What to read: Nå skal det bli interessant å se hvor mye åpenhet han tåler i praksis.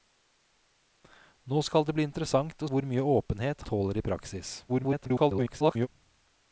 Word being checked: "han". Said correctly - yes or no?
no